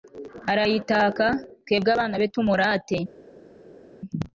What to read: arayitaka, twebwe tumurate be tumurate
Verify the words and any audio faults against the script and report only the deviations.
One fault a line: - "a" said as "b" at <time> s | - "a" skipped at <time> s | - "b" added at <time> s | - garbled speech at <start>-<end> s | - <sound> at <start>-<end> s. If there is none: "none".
- "tumurate" said as "abana" at 1.9 s